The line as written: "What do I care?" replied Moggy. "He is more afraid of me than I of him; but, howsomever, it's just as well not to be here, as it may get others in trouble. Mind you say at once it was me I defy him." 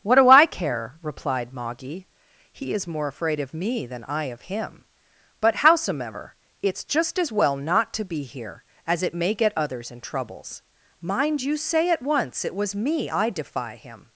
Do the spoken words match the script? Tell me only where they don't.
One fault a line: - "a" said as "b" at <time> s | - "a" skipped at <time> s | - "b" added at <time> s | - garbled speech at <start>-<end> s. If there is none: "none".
- "trouble" said as "troubles" at 10.0 s